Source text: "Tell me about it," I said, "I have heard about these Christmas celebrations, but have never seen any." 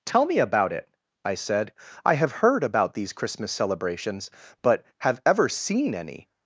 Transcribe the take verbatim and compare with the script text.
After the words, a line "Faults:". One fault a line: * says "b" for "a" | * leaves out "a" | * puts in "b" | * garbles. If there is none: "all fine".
"Tell me about it," I said, "I have heard about these Christmas celebrations, but have ever seen any."
Faults:
* says "ever" for "never"